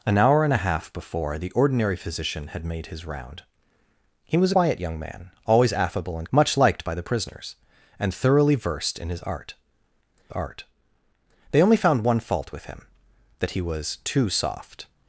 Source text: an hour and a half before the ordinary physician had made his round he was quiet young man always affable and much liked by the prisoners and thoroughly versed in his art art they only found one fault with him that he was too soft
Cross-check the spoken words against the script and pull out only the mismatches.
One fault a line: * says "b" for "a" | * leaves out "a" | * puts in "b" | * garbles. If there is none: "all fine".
all fine